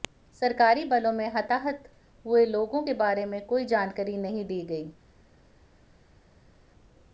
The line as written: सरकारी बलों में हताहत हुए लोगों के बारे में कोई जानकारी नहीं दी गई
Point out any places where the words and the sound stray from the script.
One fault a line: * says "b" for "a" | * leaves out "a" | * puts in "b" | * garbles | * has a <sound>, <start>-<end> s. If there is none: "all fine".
all fine